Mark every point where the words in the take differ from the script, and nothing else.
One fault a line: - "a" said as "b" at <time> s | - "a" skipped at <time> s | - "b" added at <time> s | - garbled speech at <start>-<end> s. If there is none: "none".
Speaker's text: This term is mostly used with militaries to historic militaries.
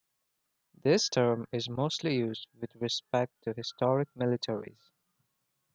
- "militaries" said as "respect" at 2.8 s